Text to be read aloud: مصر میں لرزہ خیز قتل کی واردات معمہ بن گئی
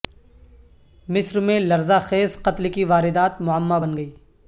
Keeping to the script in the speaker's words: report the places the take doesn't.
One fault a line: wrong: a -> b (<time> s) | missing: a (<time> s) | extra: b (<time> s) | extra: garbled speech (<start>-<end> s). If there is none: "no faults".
no faults